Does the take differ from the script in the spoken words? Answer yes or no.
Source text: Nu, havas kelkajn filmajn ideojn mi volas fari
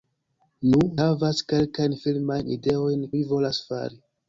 no